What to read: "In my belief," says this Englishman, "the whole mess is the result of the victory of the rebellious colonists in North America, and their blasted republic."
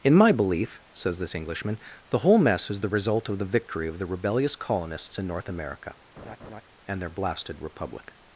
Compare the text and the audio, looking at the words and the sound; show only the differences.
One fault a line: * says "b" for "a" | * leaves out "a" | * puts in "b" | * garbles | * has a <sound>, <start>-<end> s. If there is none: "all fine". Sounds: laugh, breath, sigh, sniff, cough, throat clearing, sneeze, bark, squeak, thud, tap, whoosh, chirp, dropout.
* has a laugh, 6.2-6.6 s